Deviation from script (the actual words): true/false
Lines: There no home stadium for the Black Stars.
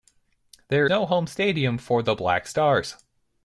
false